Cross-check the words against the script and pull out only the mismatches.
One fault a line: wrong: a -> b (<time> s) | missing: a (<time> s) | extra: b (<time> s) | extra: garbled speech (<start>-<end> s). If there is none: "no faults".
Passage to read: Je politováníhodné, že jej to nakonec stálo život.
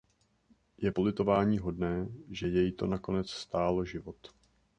no faults